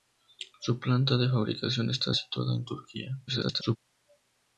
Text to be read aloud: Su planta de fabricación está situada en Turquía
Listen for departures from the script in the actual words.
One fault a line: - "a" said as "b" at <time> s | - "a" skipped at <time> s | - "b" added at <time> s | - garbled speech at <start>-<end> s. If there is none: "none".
- garbled speech at 3.3-3.8 s